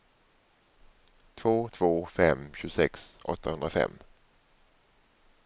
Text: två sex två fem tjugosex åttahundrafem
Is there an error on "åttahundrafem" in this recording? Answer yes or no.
no